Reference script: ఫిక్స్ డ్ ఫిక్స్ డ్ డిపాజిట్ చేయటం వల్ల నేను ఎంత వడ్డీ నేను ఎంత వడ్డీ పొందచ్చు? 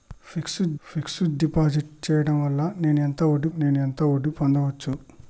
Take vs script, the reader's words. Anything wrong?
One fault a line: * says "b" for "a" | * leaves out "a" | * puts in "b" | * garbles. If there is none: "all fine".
all fine